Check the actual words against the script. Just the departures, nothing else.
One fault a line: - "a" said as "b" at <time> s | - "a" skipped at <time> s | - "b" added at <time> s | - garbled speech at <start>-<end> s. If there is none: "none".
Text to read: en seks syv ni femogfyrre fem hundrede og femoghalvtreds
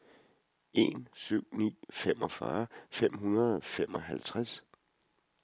- "seks" skipped at 1.1 s